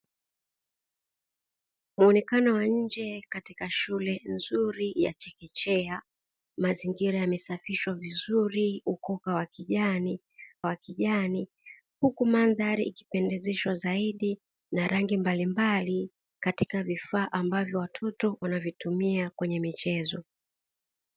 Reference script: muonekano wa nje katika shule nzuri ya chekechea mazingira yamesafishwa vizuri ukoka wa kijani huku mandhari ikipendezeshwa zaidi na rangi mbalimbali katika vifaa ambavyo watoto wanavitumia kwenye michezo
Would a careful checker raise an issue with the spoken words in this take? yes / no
yes